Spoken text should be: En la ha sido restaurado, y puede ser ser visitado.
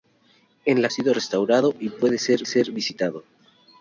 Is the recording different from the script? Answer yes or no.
no